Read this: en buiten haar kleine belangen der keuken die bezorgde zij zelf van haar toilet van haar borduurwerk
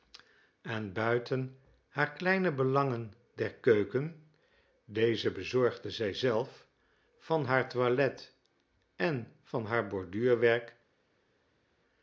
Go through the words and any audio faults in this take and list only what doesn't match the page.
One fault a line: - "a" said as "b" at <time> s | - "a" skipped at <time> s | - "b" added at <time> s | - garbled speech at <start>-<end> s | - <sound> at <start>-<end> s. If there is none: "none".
- "die" said as "deze" at 4.9 s
- "en" added at 9.0 s